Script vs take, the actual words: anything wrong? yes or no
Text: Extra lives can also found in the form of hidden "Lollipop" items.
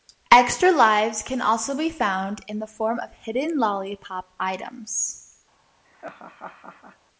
yes